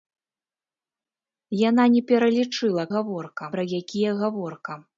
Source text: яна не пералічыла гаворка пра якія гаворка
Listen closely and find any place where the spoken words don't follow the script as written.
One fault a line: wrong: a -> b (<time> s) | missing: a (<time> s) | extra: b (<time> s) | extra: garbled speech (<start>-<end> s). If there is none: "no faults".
no faults